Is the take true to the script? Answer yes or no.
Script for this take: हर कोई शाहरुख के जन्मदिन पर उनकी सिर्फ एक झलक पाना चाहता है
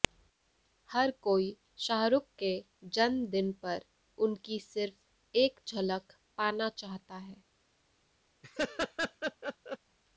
yes